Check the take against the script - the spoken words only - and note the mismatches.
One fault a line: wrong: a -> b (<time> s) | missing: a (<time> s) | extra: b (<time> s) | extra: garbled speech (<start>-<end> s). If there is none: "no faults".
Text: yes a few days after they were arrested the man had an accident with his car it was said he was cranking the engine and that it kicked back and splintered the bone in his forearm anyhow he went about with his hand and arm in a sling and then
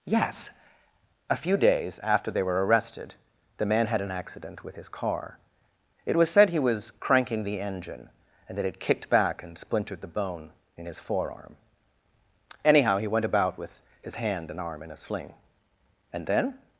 no faults